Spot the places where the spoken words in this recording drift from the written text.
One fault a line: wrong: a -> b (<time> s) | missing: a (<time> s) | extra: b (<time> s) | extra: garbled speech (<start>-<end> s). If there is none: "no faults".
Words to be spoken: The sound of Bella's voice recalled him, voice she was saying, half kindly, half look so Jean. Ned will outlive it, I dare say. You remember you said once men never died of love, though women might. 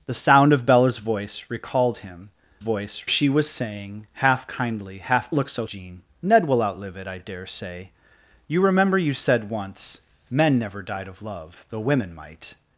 no faults